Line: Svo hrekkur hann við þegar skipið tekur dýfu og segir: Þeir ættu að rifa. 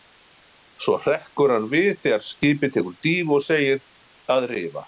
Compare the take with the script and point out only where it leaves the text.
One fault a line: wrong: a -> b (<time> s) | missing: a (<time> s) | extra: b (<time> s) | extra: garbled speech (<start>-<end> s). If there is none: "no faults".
missing: Þeir ættu (3.9 s)